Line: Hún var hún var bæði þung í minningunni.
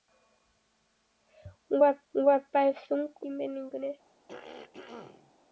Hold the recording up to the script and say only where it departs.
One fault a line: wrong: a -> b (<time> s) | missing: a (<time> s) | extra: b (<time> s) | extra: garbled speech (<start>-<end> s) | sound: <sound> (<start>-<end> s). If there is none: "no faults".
sound: throat clearing (4.3-5.3 s)